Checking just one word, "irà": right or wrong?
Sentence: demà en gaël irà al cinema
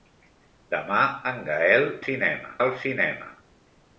wrong